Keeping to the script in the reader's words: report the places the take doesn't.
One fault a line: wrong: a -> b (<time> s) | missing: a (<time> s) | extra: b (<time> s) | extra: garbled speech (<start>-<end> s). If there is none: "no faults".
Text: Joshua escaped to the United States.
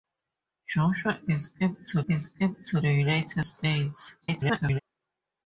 extra: escaped to (2.1 s)
extra: garbled speech (4.2-4.8 s)